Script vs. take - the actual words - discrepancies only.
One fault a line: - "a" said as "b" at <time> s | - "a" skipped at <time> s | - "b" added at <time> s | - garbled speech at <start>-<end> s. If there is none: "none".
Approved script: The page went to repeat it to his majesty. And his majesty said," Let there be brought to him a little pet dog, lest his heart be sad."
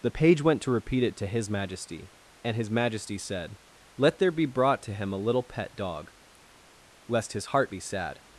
none